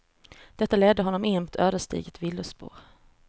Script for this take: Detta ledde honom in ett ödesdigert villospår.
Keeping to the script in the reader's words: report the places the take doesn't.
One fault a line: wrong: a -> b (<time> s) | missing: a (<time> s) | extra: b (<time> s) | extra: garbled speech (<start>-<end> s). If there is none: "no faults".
no faults